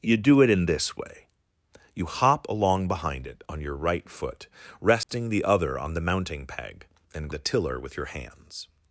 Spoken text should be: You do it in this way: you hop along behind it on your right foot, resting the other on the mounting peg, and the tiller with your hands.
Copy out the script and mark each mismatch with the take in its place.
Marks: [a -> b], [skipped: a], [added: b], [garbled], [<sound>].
You do it in this way: you hop along behind it on your right foot, resting [dropout] the other on the mounting peg, and the tiller with your hands.